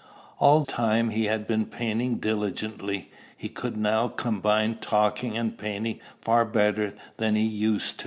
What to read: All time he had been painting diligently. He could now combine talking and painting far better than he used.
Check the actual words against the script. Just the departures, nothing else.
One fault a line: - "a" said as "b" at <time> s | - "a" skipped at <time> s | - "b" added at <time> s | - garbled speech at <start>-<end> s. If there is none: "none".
none